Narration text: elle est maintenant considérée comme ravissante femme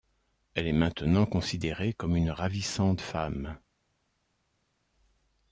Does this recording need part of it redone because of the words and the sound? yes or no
yes